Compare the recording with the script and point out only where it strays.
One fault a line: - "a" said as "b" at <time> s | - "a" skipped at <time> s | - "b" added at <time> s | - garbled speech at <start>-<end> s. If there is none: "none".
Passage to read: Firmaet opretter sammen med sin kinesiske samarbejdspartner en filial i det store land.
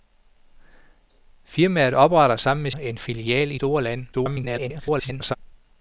- "sin kinesiske samarbejdspartner" skipped at 2.7 s
- "det" skipped at 3.6 s
- garbled speech at 4.1-5.3 s